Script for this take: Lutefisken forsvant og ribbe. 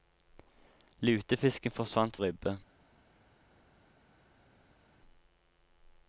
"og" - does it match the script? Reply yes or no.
yes